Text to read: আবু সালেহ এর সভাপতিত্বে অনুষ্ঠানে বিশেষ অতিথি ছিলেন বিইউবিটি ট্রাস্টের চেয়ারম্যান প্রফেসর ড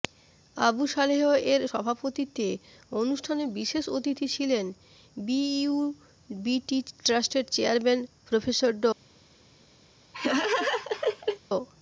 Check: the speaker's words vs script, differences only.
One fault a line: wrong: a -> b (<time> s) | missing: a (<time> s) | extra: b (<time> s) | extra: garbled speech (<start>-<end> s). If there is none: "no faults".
no faults